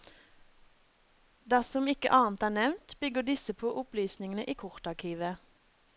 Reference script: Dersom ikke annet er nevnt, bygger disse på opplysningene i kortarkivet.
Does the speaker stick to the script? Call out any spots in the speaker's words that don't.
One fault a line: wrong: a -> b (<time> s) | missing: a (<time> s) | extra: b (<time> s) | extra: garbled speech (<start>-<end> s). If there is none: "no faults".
no faults